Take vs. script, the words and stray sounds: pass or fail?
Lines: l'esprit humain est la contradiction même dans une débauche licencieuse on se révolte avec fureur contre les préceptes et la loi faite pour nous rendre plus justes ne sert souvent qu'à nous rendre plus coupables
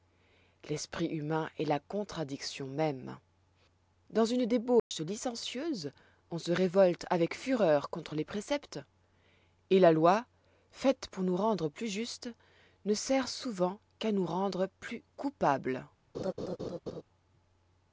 fail